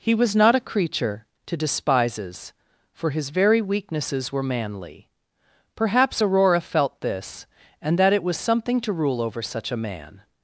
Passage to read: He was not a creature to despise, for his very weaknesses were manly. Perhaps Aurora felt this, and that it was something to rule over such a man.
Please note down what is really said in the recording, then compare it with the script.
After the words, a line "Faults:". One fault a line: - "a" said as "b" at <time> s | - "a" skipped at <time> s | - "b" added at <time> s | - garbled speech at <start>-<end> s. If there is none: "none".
He was not a creature to despises, for his very weaknesses were manly. Perhaps Aurora felt this, and that it was something to rule over such a man.
Faults:
- "despise" said as "despises" at 1.6 s